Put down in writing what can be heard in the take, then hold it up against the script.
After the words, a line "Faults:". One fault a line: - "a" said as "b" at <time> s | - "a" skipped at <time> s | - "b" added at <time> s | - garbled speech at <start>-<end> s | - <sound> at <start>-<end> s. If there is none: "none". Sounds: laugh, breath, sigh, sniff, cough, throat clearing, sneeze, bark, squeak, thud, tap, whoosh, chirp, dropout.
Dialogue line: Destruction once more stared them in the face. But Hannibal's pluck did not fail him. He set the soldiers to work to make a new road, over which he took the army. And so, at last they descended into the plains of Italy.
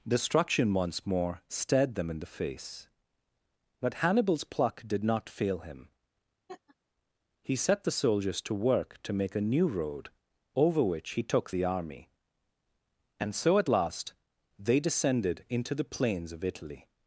Destruction once more stared them in the face. But Hannibal's pluck did not fail him. He set the soldiers to work to make a new road, over which he took the army. And so, at last they descended into the plains of Italy.
Faults:
- laugh at 6.5-6.8 s